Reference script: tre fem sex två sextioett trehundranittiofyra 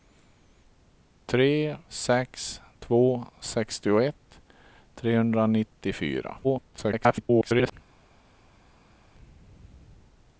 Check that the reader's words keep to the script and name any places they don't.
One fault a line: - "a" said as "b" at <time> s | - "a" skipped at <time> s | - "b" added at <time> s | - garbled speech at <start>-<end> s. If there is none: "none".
- "fem" skipped at 1.8 s
- garbled speech at 6.4-7.7 s